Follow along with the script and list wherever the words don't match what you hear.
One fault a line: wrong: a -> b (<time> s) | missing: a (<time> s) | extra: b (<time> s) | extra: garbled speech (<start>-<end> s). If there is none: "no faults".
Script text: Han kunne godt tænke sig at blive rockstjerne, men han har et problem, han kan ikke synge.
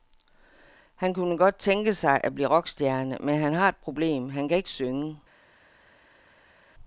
no faults